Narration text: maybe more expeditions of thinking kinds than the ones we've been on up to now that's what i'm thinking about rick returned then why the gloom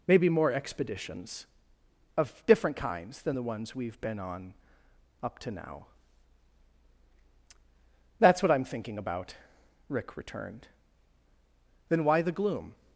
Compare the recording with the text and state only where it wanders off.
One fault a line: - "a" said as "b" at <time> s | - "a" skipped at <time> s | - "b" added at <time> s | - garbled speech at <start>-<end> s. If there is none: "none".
- "thinking" said as "different" at 2.5 s